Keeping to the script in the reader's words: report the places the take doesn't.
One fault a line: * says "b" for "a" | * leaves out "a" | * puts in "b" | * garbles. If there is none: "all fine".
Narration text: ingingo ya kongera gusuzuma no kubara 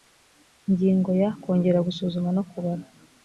all fine